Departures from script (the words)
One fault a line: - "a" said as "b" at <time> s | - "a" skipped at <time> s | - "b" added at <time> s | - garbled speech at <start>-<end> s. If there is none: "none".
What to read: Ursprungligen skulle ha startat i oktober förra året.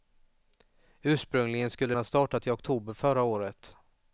none